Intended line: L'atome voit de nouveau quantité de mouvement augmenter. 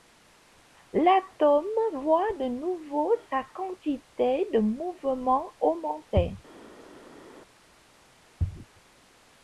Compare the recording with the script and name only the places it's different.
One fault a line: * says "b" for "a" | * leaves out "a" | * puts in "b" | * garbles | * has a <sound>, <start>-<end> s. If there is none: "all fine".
* puts in "sa"